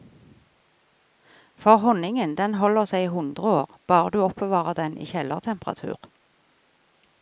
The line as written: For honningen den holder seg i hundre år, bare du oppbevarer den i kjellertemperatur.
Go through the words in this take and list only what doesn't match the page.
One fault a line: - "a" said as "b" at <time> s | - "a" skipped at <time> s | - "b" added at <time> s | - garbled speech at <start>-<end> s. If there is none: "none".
none